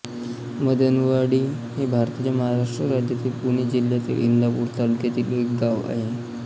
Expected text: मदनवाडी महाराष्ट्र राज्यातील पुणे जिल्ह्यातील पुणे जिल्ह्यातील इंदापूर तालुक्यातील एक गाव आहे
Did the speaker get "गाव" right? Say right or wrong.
right